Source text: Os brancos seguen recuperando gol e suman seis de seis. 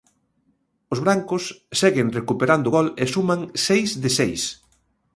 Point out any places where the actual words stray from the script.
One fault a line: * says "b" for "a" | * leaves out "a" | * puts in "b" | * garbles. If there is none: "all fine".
all fine